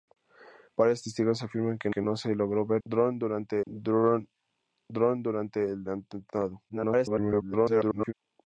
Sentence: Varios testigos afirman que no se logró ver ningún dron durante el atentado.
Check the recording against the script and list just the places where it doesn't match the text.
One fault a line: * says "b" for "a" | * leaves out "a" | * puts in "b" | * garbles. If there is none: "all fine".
* puts in "que"
* says "durante" for "ningún"
* garbles